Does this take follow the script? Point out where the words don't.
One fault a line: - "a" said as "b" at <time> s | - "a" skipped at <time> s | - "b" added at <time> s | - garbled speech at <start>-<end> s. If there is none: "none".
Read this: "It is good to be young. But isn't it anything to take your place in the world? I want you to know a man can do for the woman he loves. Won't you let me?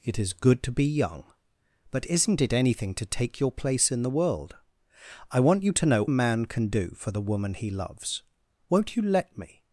none